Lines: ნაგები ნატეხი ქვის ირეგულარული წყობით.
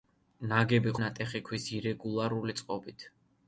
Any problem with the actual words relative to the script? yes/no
no